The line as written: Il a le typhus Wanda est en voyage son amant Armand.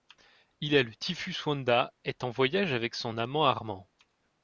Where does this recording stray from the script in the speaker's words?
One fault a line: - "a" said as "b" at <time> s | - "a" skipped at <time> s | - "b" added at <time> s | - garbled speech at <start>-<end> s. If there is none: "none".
- "avec" added at 2.7 s